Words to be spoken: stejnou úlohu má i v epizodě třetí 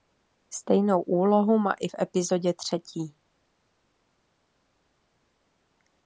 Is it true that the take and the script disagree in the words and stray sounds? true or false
false